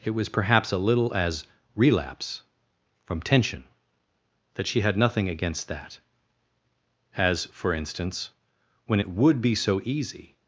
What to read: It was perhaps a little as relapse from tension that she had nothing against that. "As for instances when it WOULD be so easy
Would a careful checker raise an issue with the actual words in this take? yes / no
yes